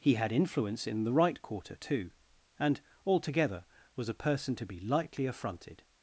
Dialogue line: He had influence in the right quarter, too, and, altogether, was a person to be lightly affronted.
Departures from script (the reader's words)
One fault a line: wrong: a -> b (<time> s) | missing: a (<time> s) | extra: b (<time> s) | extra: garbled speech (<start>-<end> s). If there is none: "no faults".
no faults